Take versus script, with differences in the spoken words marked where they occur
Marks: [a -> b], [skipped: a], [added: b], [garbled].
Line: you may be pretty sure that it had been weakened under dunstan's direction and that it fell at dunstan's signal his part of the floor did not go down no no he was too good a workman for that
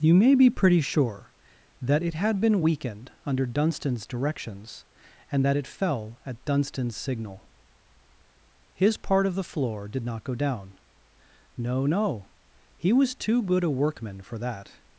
you may be pretty sure that it had been weakened under dunstan's [direction -> directions] and that it fell at dunstan's signal his part of the floor did not go down no no he was too good a workman for that